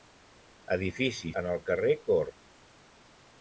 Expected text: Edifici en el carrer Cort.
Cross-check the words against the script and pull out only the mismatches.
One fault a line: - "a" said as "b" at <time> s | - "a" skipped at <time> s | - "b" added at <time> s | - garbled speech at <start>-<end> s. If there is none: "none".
none